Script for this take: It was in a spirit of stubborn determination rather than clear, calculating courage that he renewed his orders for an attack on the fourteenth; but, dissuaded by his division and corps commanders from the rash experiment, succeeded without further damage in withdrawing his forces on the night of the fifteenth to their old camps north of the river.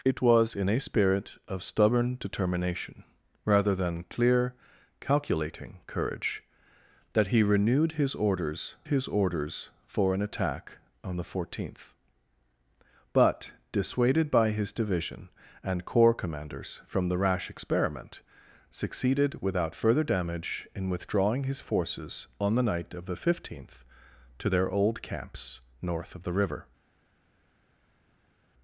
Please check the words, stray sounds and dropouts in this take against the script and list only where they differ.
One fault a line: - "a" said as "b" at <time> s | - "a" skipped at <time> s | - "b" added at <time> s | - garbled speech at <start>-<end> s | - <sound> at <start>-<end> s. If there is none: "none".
- "his orders" added at 8.9 s